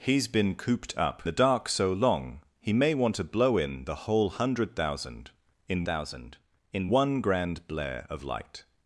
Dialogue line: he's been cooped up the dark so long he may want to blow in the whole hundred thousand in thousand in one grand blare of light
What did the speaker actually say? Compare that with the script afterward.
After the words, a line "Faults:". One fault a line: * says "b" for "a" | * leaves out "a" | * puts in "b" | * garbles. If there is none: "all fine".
he's been cooped up the dark so long he may want to blow in the whole hundred thousand in thousand in one grand blare of light
Faults:
all fine